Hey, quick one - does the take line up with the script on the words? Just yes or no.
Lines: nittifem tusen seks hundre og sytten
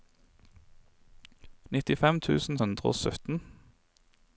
no